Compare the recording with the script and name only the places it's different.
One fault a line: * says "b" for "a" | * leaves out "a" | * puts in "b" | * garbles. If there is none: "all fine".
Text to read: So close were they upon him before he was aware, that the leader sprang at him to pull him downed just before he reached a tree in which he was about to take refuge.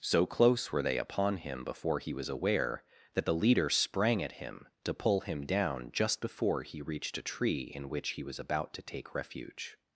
* says "down" for "downed"